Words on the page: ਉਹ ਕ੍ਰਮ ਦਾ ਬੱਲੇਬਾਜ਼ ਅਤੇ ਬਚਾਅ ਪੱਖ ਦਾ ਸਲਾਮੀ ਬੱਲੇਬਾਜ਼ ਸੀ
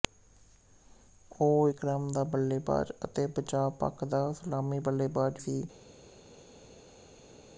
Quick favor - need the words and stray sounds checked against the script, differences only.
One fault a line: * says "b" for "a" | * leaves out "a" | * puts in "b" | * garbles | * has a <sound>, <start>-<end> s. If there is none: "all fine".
all fine